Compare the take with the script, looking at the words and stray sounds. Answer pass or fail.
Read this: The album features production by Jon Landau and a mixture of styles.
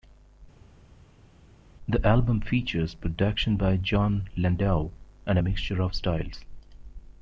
pass